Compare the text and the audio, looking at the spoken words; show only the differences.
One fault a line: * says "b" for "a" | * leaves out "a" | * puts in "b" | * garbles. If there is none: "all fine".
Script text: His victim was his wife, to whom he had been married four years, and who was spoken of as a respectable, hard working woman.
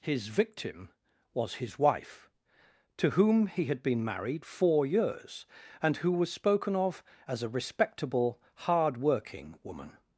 all fine